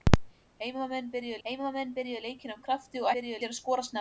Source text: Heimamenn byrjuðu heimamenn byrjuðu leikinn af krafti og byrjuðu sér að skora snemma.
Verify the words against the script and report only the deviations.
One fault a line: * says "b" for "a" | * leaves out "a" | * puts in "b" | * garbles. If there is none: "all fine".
all fine